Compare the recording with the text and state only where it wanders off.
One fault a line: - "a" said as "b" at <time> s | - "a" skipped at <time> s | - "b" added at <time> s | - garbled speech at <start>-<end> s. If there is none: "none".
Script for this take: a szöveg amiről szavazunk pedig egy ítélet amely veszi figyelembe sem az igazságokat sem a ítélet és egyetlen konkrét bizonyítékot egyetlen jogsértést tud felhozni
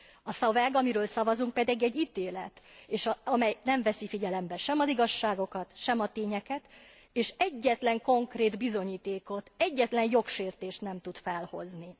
- "nem" added at 3.6 s
- "ítélet" said as "tényeket" at 6.1 s
- "nem" added at 10.8 s